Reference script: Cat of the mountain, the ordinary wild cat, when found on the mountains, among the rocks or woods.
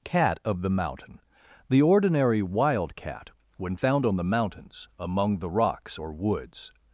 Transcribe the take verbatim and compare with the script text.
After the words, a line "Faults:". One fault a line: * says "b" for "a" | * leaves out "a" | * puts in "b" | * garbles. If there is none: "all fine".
Cat of the mountain, the ordinary wild cat, when found on the mountains, among the rocks or woods.
Faults:
all fine